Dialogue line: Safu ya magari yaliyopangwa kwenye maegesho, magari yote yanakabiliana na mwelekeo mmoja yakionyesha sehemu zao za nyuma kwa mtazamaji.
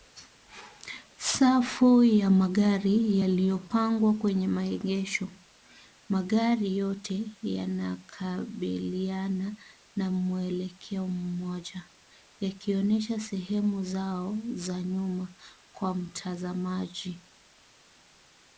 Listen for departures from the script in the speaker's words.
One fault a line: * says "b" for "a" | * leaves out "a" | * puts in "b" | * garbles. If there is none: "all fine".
all fine